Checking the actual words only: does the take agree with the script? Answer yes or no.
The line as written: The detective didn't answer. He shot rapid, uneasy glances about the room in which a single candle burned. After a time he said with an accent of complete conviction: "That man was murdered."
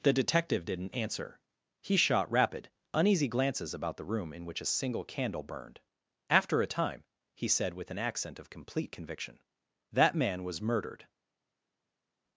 yes